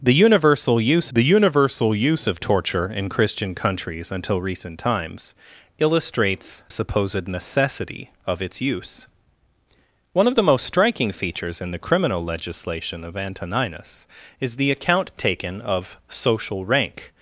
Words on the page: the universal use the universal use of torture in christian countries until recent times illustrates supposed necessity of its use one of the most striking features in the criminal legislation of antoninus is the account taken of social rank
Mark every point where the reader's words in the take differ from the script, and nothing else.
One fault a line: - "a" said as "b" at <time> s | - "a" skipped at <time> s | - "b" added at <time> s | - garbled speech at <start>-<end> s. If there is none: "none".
none